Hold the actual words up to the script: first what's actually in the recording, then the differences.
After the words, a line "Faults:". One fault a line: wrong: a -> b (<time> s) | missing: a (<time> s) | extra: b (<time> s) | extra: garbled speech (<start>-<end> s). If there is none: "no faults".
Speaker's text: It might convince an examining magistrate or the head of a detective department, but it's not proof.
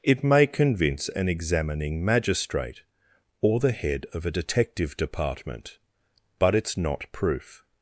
It may convince an examining magistrate or the head of a detective department, but it's not proof.
Faults:
wrong: might -> may (0.2 s)